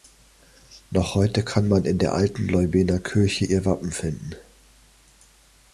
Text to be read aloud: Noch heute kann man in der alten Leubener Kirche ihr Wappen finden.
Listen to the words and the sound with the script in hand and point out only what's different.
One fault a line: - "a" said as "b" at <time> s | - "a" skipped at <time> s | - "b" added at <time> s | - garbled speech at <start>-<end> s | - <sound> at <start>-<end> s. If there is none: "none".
none